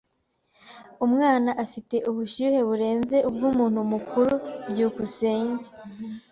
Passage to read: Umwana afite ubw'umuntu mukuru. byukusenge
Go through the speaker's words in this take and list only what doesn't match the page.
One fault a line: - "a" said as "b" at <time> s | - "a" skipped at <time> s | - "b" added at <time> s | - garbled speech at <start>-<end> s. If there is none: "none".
- "ubushyuhe burenze" added at 2.1 s